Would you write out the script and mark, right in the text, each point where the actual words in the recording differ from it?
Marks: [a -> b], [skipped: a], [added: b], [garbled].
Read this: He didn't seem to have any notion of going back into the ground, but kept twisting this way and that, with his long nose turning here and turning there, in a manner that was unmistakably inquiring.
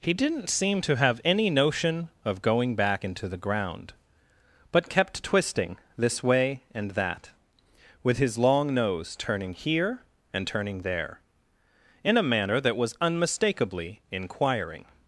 He didn't seem to have any notion of going back into the ground, but kept twisting this way and that, with his long nose turning here and turning there, in a manner that was unmistakably inquiring.